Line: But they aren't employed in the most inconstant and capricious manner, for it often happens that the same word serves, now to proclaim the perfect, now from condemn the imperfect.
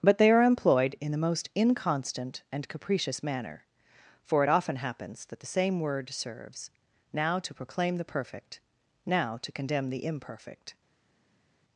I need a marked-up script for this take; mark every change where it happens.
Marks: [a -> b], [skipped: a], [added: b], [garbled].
But they [aren't -> are] employed in the most inconstant and capricious manner, for it often happens that the same word serves, now to proclaim the perfect, now [from -> to] condemn the imperfect.